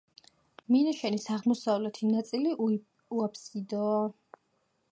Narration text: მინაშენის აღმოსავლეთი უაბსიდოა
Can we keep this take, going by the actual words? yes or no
no